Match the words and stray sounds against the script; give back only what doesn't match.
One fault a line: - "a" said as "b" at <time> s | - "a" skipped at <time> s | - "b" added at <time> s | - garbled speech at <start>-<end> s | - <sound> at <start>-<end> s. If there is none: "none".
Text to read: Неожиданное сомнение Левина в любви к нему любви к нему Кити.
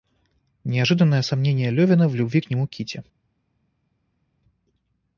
- "любви к нему" skipped at 2.7 s